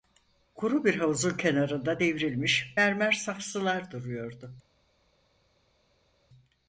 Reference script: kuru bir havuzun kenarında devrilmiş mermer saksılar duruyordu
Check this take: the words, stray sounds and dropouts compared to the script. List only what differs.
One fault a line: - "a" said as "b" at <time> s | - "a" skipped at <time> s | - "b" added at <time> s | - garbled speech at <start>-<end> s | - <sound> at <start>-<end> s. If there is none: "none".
none